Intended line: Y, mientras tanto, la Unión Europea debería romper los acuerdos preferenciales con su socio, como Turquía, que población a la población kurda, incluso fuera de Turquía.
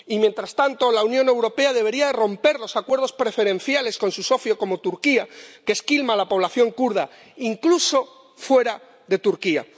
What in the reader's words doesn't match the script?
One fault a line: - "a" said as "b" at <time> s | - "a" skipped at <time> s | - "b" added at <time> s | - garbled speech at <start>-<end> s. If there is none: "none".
- "población" said as "esquilma" at 5.7 s